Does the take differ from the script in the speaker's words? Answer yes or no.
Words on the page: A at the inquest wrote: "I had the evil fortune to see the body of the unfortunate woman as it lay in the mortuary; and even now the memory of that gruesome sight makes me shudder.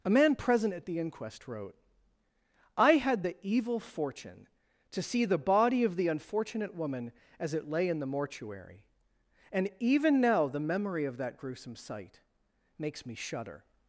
yes